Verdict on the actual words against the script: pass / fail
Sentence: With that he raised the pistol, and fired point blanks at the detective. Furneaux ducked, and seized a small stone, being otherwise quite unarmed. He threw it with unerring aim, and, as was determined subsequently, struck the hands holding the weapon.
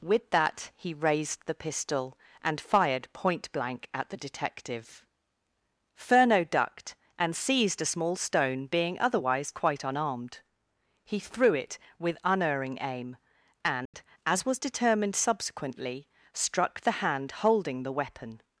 fail